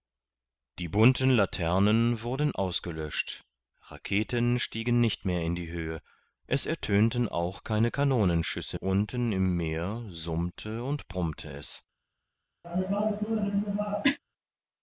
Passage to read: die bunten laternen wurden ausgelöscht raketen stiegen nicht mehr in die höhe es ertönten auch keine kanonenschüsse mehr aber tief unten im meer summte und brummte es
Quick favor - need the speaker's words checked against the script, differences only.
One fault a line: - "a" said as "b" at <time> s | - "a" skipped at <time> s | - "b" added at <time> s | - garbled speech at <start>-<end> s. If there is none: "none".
- "mehr aber tief" skipped at 8.8 s